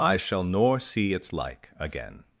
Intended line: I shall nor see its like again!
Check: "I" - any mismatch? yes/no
no